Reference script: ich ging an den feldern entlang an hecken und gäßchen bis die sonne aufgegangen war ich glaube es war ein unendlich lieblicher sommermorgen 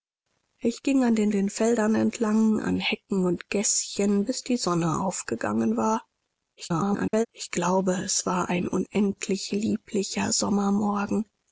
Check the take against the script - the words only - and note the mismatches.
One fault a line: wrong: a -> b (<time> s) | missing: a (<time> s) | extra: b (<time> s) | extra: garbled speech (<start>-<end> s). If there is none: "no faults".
extra: den (1.3 s)
extra: garbled speech (6.6-7.3 s)